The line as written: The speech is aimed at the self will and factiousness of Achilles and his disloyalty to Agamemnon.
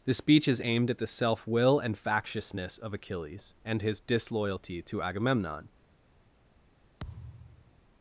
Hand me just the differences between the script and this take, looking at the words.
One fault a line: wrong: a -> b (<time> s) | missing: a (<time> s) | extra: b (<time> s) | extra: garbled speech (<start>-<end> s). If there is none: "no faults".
no faults